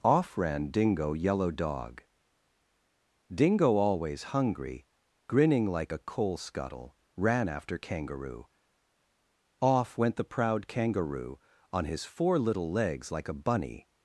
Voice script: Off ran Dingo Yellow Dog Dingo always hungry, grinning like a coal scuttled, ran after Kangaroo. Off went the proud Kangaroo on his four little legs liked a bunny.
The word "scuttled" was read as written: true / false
false